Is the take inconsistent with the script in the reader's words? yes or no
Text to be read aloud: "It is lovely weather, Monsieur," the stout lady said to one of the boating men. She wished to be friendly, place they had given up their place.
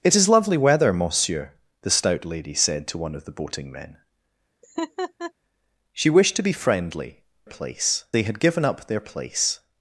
no